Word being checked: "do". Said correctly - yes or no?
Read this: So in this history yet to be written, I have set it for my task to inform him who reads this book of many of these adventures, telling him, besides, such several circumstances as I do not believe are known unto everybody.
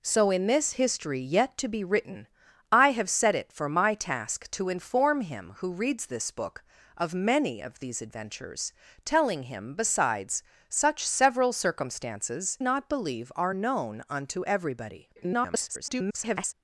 no